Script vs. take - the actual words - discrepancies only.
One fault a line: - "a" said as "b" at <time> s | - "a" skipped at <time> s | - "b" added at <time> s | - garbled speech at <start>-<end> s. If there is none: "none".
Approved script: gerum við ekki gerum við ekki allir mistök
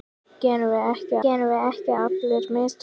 none